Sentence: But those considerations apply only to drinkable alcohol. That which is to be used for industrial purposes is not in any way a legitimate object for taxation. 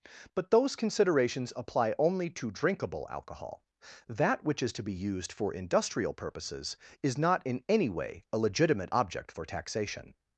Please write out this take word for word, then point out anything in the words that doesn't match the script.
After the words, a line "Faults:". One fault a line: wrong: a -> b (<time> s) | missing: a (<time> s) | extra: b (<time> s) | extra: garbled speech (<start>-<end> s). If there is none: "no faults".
But those considerations apply only to drinkable alcohol. That which is to be used for industrial purposes is not in any way a legitimate object for taxation.
Faults:
no faults